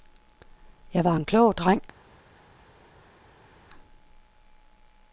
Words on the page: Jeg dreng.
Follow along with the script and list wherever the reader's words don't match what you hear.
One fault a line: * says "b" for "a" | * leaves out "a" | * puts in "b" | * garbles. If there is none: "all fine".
* puts in "var en klog"